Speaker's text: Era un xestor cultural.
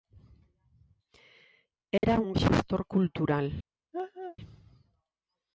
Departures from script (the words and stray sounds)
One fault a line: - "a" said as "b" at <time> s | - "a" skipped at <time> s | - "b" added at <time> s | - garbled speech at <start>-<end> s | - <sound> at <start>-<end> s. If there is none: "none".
- dropout at 2.0-2.0 s
- laugh at 3.9-4.4 s